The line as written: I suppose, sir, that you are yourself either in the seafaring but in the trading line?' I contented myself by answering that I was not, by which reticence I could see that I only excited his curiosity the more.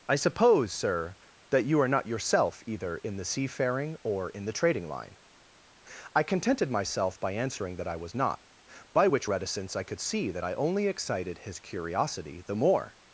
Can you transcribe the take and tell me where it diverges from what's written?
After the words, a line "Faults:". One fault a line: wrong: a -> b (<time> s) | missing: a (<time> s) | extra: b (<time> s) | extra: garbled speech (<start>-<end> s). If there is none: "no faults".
I suppose, sir, that you are not yourself either in the seafaring or in the trading line?' I contented myself by answering that I was not, by which reticence I could see that I only excited his curiosity the more.
Faults:
extra: not (1.9 s)
wrong: but -> or (4.0 s)